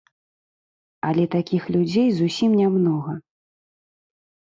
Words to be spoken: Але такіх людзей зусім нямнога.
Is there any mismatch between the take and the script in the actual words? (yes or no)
no